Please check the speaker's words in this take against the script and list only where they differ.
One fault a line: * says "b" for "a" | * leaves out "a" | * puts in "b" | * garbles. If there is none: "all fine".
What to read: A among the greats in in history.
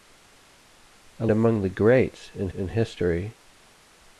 all fine